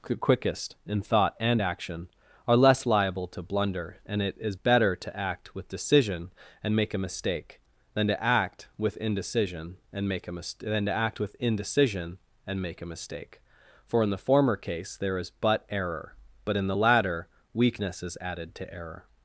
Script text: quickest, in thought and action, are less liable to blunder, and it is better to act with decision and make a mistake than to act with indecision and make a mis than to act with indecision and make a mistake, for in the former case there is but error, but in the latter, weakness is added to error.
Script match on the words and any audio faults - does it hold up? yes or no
yes